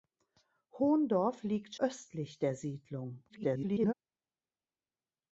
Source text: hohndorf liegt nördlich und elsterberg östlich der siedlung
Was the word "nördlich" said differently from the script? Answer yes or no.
yes